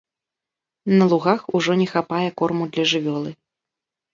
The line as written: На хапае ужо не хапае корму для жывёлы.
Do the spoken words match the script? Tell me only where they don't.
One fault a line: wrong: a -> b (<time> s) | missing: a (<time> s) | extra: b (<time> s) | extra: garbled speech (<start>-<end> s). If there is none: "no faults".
wrong: хапае -> лугах (1.1 s)